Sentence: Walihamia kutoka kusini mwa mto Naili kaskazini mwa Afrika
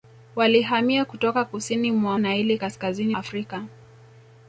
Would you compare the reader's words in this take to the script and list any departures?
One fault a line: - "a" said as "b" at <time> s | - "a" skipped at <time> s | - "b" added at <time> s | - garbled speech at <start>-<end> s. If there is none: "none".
- "mto" skipped at 2.2 s
- "mwa" skipped at 3.2 s